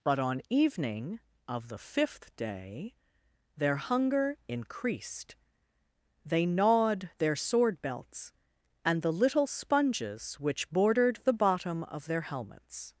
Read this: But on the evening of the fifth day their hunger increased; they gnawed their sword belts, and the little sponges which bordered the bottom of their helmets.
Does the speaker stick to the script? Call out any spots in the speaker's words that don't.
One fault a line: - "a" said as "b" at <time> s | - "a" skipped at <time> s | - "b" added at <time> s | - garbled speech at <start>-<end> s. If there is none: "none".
- "the" skipped at 0.4 s